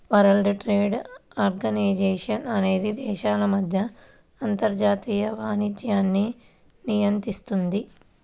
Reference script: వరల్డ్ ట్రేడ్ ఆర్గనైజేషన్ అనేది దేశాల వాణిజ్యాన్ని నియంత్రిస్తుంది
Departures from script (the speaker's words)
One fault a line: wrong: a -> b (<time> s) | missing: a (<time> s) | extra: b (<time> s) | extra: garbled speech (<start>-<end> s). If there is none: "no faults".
extra: మధ్య అంతర్జాతీయ (3.5 s)